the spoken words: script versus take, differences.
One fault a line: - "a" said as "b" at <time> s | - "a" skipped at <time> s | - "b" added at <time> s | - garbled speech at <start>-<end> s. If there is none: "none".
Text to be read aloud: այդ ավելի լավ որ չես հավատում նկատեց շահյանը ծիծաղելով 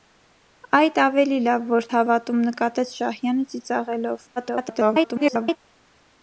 - "չես" skipped at 1.9 s
- garbled speech at 4.4-5.6 s